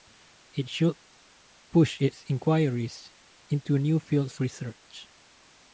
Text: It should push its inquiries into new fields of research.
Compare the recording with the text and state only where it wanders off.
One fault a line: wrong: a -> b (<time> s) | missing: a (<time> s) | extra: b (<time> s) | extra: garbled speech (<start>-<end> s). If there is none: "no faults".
missing: of (4.4 s)